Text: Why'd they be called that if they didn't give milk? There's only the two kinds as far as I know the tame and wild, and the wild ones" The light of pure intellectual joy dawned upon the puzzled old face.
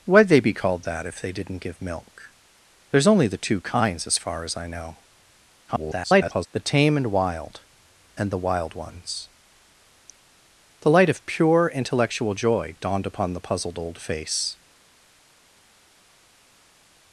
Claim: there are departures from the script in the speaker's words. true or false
true